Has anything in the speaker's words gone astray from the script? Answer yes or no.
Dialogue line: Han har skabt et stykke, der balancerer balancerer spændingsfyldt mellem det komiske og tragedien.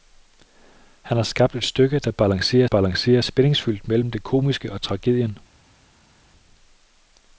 no